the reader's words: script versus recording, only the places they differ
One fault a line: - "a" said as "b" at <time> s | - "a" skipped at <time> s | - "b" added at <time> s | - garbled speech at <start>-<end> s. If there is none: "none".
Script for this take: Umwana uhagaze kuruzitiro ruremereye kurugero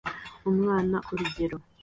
- "uhagaze kuruzitiro ruremereye" skipped at 1.0 s